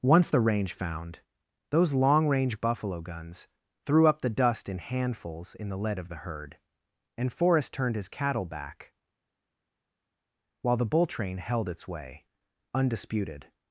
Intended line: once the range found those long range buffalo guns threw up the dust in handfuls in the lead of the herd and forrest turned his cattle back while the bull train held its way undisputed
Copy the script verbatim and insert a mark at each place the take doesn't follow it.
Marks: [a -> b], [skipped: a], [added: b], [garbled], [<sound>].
once the range found those long range buffalo guns threw up the dust in handfuls in the lead of the herd and forrest turned his cattle back while the bull train held its way undisputed